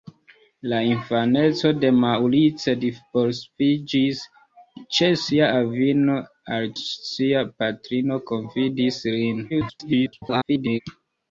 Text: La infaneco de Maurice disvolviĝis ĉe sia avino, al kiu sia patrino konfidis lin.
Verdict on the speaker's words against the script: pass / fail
fail